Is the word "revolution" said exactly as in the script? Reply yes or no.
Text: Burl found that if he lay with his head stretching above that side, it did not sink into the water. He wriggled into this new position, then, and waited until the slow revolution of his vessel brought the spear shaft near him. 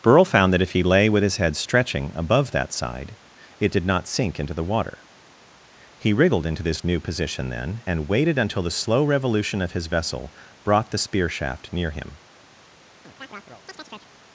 yes